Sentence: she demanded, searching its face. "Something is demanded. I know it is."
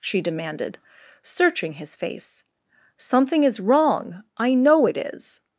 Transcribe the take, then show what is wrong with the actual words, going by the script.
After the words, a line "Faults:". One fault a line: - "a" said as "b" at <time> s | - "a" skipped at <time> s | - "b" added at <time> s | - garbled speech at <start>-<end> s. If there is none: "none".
she demanded, searching his face. "Something is wrong. I know it is."
Faults:
- "its" said as "his" at 1.7 s
- "demanded" said as "wrong" at 3.6 s